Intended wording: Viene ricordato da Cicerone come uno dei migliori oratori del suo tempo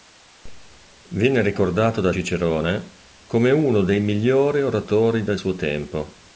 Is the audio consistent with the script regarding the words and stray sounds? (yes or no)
yes